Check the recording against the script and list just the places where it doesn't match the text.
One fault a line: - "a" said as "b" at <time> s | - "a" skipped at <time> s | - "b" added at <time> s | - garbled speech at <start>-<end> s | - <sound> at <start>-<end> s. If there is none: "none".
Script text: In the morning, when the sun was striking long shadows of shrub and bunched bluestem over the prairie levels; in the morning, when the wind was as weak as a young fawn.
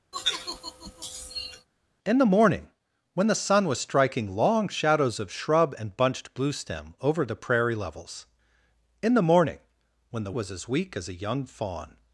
- sigh at 0.1-1.7 s
- "wind" skipped at 10.3 s